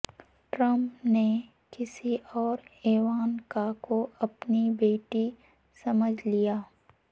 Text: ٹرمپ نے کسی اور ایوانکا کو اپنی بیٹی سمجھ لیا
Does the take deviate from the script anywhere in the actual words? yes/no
no